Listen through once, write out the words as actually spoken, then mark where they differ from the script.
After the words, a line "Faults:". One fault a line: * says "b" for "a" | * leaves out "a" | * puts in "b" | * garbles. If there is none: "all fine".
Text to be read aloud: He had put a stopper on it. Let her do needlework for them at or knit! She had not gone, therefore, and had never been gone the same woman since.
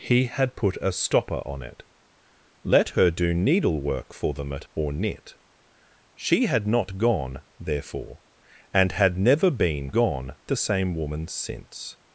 He had put a stopper on it. Let her do needlework for them at or knit! She had not gone, therefore, and had never been gone the same woman since.
Faults:
all fine